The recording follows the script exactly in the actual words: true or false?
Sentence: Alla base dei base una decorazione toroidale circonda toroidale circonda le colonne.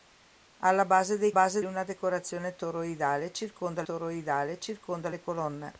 true